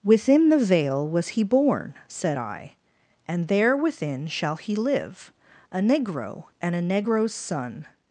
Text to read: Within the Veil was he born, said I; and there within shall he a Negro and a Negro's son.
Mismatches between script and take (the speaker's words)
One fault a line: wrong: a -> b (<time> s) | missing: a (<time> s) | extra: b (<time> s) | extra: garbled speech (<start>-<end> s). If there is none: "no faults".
extra: live (4.8 s)